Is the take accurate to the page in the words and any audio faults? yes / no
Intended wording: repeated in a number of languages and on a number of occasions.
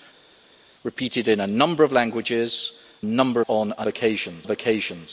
no